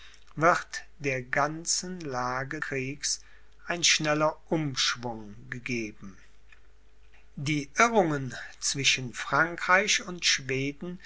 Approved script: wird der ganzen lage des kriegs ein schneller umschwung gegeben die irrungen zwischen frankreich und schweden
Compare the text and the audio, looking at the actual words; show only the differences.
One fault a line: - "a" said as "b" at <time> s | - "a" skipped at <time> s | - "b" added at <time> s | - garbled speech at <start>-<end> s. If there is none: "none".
- "des" skipped at 2.6 s